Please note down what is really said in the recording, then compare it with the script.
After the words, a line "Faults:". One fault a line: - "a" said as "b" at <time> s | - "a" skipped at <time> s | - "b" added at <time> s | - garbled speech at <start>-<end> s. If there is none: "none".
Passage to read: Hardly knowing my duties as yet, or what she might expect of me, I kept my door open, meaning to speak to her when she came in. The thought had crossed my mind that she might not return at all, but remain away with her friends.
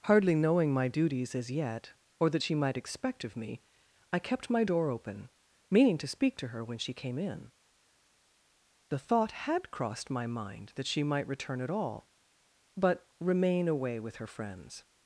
Hardly knowing my duties as yet, or that she might expect of me, I kept my door open, meaning to speak to her when she came in. The thought had crossed my mind that she might return at all, but remain away with her friends.
Faults:
- "what" said as "that" at 2.3 s
- "not" skipped at 11.3 s